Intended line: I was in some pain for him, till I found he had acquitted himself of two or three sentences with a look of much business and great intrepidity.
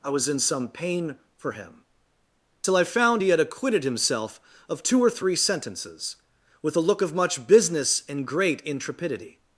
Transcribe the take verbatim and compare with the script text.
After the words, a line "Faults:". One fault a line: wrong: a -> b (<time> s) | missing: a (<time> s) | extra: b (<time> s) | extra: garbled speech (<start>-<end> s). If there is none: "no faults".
I was in some pain for him, till I found he had acquitted himself of two or three sentences with a look of much business and great intrepidity.
Faults:
no faults